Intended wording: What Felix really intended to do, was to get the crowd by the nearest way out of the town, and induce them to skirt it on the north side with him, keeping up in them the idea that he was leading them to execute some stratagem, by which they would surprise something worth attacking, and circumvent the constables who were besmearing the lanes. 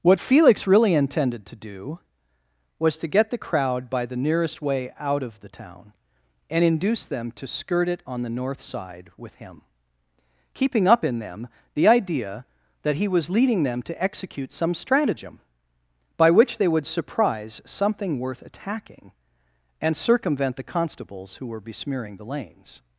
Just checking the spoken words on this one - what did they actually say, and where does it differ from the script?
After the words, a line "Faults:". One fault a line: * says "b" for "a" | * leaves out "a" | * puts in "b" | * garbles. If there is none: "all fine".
What Felix really intended to do, was to get the crowd by the nearest way out of the town, and induce them to skirt it on the north side with him, keeping up in them the idea that he was leading them to execute some stratagem, by which they would surprise something worth attacking, and circumvent the constables who were besmearing the lanes.
Faults:
all fine